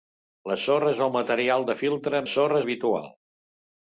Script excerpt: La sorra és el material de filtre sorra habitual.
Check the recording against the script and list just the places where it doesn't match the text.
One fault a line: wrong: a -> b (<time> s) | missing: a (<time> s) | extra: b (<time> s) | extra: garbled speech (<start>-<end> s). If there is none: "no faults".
no faults